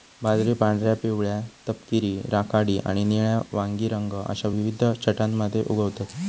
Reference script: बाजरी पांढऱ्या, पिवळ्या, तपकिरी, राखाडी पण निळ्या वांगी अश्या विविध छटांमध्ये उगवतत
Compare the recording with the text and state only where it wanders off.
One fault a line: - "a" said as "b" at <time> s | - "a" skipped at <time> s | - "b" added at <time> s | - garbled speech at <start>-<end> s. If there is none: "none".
- "पण" said as "आणि" at 2.8 s
- "रंग" added at 3.9 s